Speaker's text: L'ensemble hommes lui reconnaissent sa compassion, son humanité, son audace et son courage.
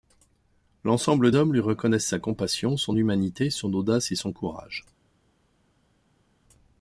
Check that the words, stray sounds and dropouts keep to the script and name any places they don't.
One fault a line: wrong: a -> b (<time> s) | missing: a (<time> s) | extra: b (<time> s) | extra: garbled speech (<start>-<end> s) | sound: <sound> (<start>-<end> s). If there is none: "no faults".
no faults